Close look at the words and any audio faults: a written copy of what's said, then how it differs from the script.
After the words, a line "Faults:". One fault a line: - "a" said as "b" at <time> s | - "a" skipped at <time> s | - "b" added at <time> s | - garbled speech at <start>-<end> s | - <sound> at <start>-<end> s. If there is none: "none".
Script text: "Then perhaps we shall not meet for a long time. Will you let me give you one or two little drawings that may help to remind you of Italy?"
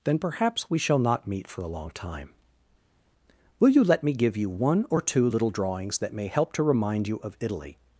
"Then perhaps we shall not meet for a long time. Will you let me give you one or two little drawings that may help to remind you of Italy?"
Faults:
none